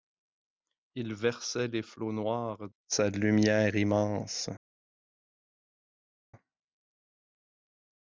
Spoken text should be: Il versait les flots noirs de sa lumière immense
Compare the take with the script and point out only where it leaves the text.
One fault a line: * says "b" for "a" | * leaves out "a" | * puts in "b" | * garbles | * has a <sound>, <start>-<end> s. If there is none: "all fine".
all fine